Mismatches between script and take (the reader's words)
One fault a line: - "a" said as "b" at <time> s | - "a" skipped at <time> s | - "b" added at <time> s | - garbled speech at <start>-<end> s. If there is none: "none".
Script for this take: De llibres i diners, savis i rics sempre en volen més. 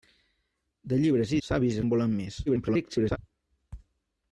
- "diners" skipped at 1.4 s
- "rics sempre" skipped at 1.9 s
- garbled speech at 2.5-3.2 s